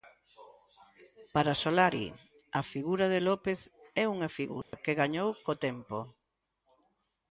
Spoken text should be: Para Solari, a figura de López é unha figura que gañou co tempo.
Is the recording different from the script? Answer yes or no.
no